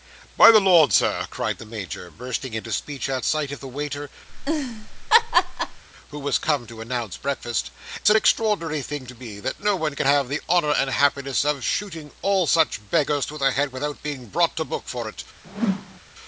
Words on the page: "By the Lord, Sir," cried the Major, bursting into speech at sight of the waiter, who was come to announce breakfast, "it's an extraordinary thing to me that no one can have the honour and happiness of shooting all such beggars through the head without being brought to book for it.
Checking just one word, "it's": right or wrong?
wrong